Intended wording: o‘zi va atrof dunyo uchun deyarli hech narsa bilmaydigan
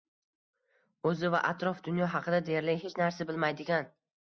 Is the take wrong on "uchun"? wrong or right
wrong